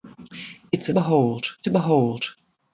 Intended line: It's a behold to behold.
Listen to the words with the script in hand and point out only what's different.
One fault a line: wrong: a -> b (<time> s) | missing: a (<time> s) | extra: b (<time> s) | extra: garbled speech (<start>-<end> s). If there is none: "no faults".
no faults